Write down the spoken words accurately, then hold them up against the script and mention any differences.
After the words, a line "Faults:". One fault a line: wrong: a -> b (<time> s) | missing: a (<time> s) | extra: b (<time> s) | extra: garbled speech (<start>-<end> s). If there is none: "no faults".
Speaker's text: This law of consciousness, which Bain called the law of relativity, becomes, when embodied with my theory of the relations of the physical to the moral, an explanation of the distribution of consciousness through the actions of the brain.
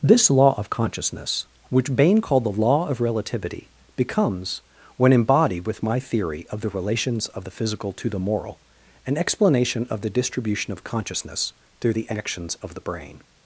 This law of consciousness, which Bain called the law of relativity, becomes, when embodied with my theory of the relations of the physical to the moral, an explanation of the distribution of consciousness through the actions of the brain.
Faults:
no faults